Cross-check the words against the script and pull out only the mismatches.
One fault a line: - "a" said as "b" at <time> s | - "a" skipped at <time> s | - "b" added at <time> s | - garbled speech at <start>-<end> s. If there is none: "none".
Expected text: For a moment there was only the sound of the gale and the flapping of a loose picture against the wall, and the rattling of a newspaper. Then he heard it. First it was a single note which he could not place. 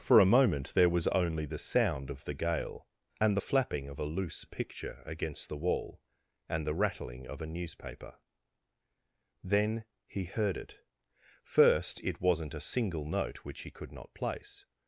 - "was" said as "wasn't" at 12.2 s